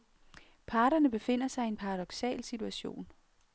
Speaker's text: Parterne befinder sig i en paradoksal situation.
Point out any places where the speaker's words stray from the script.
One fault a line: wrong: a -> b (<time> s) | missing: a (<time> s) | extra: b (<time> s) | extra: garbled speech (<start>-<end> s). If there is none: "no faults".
no faults